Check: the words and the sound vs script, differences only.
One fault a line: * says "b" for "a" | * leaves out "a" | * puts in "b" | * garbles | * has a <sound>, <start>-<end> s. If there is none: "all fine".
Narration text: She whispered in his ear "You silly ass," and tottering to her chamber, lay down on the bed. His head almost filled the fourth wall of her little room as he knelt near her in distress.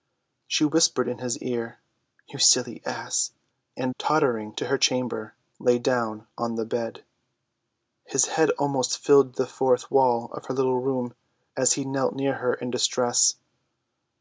all fine